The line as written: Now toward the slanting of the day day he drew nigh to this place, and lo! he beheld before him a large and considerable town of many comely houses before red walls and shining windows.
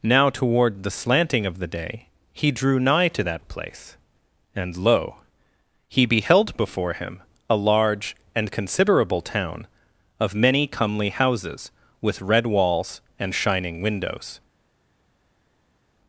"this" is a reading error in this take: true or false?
true